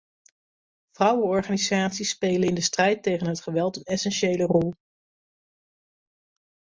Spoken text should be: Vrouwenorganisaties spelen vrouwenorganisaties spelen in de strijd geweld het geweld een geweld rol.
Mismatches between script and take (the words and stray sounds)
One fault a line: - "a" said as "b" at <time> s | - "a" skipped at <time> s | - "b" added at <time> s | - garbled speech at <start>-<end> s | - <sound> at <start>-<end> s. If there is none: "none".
- "vrouwenorganisaties spelen" skipped at 2.5 s
- "geweld" said as "tegen" at 3.0 s
- "geweld" said as "essentiële" at 3.8 s